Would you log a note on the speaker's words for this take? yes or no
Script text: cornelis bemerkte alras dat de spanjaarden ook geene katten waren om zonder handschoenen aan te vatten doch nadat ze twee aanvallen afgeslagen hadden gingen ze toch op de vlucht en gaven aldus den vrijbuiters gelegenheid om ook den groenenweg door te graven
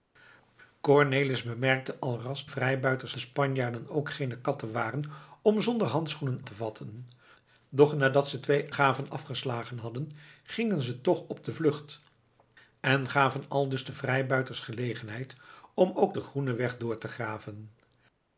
yes